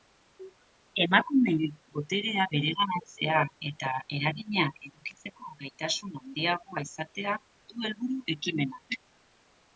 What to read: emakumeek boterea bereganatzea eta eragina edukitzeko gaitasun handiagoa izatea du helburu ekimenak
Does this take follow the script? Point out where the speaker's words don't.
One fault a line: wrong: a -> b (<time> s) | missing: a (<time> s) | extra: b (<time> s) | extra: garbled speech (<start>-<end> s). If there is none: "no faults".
no faults